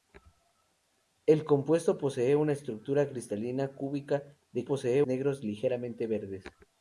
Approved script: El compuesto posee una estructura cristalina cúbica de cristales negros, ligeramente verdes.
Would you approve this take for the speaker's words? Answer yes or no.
no